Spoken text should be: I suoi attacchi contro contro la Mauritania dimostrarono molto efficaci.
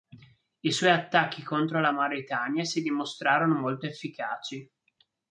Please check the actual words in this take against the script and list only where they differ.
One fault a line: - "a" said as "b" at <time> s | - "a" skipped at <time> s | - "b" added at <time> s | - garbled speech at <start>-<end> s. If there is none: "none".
- "contro" skipped at 1.8 s
- "si" added at 2.6 s